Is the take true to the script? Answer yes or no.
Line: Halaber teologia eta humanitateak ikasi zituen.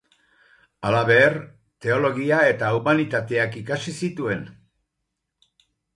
yes